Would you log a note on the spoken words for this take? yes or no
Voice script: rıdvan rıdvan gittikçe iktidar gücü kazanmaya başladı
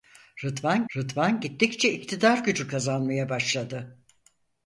no